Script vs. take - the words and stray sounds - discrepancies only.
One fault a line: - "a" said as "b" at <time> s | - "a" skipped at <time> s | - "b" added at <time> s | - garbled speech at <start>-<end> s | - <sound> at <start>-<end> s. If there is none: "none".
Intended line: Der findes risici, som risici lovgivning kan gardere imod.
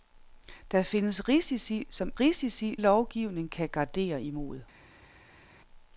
none